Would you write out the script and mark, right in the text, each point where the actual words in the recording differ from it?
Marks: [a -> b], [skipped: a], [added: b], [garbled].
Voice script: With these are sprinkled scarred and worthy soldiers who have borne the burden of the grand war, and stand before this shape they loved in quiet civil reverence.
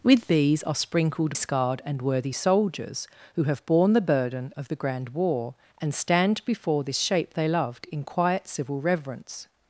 With these are sprinkled scarred and worthy soldiers who have borne the burden of the grand war, and stand before this shape they loved in quiet civil reverence.